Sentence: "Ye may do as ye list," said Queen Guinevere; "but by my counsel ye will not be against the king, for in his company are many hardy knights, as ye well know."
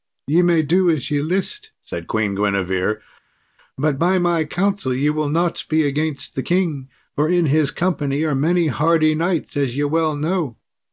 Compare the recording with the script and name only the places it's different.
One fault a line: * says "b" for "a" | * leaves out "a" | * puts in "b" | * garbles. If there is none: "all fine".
all fine